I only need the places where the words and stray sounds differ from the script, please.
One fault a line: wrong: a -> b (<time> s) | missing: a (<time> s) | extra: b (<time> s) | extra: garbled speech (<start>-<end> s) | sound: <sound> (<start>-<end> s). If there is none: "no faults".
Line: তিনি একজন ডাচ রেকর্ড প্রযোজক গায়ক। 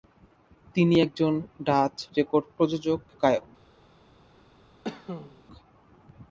sound: cough (4.8-5.4 s)